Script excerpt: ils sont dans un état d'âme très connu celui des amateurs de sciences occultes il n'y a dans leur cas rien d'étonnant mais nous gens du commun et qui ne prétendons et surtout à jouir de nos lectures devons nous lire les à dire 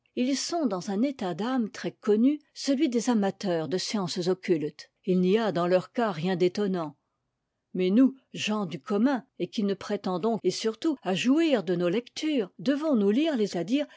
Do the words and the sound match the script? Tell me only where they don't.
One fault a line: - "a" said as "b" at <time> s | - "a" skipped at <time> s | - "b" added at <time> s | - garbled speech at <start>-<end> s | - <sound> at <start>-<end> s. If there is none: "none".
none